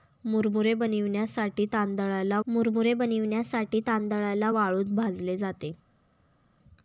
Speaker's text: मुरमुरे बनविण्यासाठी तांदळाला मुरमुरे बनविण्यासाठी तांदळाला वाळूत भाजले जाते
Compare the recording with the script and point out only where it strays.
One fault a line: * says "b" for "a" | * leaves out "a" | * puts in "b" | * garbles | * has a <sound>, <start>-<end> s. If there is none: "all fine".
all fine